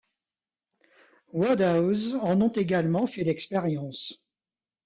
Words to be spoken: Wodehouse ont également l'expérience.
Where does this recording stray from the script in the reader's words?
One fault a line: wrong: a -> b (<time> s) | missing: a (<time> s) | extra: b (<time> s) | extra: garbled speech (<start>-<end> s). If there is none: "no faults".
extra: en (2.1 s)
extra: fait (3.1 s)